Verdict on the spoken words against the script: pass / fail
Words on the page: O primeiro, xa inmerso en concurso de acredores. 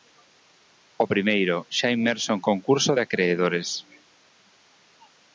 pass